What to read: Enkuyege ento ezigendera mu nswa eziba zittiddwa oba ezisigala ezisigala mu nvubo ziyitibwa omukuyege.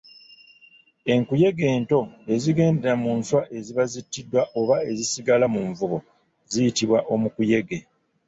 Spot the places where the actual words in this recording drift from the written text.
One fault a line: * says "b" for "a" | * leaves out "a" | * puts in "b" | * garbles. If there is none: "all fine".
* leaves out "ezisigala"